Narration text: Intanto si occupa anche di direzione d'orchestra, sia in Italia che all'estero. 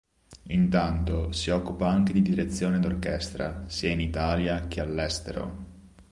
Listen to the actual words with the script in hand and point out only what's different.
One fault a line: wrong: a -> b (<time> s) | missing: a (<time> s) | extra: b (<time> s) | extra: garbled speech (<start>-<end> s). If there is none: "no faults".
no faults